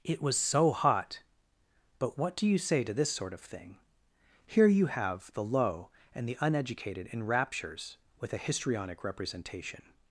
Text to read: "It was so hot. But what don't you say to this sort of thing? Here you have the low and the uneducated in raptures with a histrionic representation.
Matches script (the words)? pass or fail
fail